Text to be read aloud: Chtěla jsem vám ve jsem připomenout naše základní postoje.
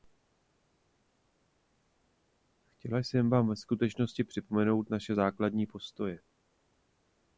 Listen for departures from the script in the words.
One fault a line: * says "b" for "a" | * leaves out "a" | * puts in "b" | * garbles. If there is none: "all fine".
* says "skutečnosti" for "jsem"